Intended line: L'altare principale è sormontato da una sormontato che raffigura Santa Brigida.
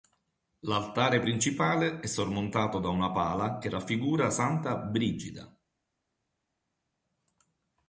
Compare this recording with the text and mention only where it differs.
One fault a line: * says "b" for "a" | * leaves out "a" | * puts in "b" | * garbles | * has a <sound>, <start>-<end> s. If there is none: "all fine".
* says "pala" for "sormontato"